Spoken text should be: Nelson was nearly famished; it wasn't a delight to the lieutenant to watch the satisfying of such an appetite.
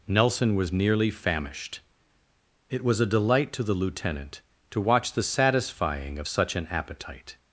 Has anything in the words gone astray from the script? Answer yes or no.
yes